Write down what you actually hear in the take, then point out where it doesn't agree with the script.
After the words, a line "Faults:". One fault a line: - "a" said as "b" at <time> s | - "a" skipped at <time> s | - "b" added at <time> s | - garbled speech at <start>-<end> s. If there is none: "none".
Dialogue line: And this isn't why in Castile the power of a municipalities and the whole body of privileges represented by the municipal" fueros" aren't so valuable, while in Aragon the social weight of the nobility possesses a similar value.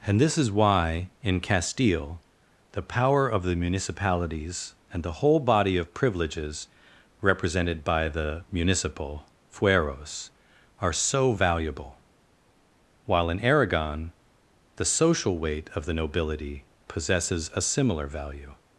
And this is why in Castile the power of the municipalities and the whole body of privileges represented by the municipal" fueros" are so valuable, while in Aragon the social weight of the nobility possesses a similar value.
Faults:
- "isn't" said as "is" at 0.4 s
- "a" said as "the" at 3.4 s
- "aren't" said as "are" at 10.8 s